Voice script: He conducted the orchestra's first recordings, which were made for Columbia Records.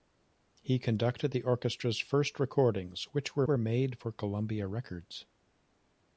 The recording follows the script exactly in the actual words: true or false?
false